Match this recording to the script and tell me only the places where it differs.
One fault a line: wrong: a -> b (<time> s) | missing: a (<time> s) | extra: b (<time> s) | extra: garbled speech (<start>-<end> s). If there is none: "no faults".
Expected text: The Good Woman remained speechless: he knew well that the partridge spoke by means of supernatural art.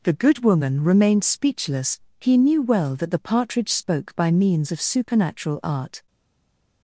no faults